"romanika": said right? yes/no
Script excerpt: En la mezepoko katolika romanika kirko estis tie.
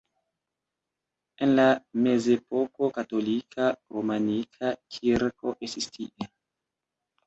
yes